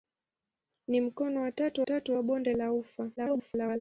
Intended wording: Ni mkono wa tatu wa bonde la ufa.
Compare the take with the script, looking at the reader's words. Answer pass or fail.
fail